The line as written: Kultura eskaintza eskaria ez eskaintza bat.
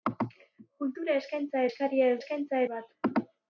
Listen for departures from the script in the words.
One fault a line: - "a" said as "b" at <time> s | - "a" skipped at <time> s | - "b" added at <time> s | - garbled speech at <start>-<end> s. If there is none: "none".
none